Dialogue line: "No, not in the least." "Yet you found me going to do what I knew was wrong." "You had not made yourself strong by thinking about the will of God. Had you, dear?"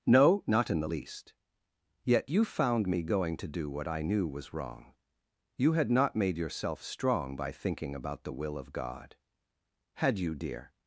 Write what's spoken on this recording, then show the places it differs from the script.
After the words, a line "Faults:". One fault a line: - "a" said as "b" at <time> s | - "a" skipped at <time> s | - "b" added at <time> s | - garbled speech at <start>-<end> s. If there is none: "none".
"No, not in the least." "Yet you found me going to do what I knew was wrong." "You had not made yourself strong by thinking about the will of God. Had you, dear?"
Faults:
none